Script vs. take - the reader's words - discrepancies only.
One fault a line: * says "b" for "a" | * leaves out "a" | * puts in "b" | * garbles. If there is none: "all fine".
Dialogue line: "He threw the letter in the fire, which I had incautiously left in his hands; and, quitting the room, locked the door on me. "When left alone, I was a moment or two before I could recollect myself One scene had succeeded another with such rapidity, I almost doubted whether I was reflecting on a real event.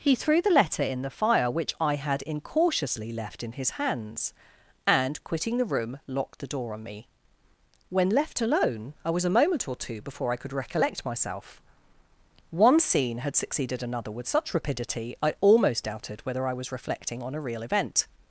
all fine